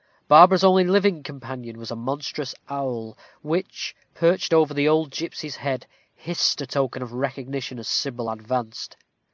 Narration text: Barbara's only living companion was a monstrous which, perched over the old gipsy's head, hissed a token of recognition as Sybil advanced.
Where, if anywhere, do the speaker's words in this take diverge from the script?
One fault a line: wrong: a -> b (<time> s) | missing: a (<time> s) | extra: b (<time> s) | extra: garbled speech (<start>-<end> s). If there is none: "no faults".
extra: owl (2.7 s)